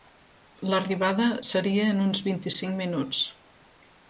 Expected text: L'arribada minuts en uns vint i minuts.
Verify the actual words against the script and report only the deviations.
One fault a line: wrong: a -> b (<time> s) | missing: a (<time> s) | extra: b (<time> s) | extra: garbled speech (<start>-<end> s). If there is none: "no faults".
wrong: minuts -> seria (1.5 s)
extra: cinc (2.6 s)